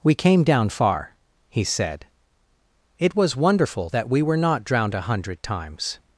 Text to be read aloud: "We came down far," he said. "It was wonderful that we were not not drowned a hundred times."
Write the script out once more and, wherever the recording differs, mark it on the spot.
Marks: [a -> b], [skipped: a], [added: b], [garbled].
"We came down far," he said. "It was wonderful that we were not [skipped: not] drowned a hundred times."